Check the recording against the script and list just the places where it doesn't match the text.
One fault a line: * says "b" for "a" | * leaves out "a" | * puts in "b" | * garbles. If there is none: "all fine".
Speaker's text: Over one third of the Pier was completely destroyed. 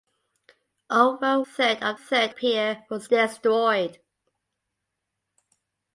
* leaves out "one"
* says "third" for "the"
* leaves out "completely"